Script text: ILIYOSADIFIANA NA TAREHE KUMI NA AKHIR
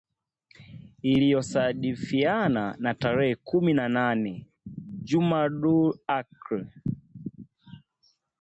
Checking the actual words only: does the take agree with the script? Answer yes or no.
no